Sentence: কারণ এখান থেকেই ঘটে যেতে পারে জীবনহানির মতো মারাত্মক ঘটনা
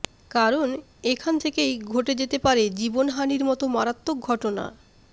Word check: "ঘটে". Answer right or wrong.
right